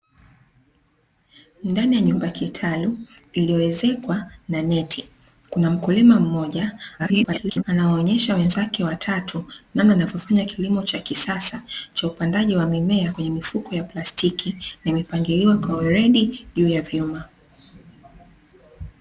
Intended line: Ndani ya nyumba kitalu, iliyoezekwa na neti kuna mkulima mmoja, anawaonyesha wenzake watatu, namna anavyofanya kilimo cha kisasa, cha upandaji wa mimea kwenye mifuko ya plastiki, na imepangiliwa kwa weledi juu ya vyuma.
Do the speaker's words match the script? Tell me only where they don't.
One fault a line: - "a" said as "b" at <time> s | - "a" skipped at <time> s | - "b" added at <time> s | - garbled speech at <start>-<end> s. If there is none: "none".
- garbled speech at 7.0-7.6 s